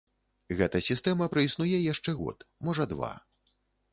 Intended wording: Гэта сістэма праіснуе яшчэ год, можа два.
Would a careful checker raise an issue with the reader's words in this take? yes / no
no